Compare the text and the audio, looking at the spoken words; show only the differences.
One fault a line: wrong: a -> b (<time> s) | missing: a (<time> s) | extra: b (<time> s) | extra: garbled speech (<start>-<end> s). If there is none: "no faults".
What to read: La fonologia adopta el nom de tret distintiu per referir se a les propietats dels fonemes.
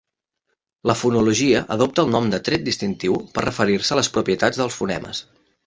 no faults